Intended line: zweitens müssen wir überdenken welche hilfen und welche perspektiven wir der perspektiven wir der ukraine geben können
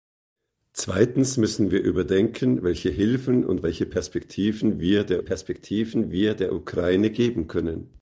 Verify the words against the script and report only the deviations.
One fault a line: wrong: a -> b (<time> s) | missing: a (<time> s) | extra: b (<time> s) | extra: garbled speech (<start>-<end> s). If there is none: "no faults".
no faults